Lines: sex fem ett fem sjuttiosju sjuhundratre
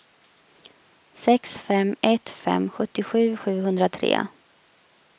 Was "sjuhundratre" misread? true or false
false